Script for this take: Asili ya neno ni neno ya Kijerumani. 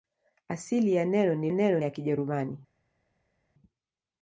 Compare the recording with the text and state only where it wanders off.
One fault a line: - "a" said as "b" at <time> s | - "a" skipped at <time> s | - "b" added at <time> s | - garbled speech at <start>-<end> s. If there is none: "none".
none